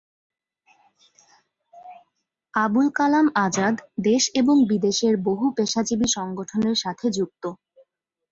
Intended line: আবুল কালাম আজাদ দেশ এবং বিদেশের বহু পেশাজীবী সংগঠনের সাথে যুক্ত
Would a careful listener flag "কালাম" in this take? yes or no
no